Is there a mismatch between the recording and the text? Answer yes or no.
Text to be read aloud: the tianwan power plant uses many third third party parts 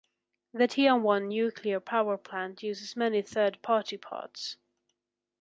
yes